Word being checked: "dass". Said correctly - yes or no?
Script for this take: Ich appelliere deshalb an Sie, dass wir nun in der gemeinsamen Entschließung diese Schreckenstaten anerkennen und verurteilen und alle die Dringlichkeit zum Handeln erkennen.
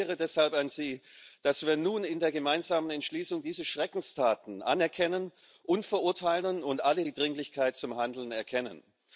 yes